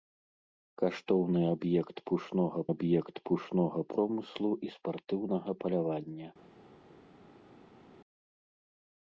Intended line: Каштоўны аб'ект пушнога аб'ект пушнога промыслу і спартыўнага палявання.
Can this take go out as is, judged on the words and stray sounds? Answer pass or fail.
pass